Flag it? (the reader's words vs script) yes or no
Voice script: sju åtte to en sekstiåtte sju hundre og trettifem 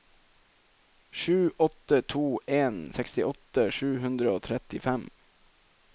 no